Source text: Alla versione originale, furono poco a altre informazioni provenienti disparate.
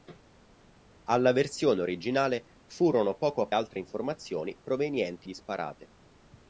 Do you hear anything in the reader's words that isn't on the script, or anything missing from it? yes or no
no